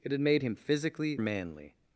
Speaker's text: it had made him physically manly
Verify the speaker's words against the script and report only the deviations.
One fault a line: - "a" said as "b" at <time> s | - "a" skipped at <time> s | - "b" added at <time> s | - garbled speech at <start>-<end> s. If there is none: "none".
none